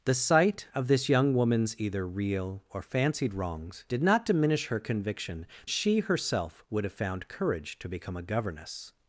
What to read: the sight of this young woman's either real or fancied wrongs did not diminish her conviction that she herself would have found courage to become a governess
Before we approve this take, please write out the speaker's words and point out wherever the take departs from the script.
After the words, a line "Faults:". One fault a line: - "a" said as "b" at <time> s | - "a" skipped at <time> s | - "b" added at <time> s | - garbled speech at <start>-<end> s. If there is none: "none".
the sight of this young woman's either real or fancied wrongs did not diminish her conviction she herself would have found courage to become a governess
Faults:
- "that" skipped at 5.5 s